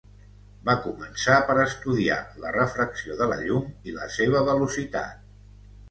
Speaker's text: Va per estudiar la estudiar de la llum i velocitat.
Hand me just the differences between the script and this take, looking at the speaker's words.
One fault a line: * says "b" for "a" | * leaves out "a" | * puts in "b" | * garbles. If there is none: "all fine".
* puts in "començar"
* says "refracció" for "estudiar"
* puts in "la seva"